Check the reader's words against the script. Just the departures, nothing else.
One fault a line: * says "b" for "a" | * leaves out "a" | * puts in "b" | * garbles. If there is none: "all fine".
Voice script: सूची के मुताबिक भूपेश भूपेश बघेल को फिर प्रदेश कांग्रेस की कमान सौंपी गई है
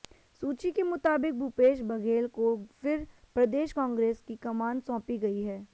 * leaves out "भूपेश"